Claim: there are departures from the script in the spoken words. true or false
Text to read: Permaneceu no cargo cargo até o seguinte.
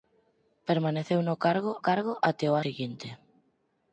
false